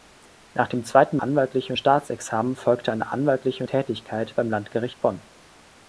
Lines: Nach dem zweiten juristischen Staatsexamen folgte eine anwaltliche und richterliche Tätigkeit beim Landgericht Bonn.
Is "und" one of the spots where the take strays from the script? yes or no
yes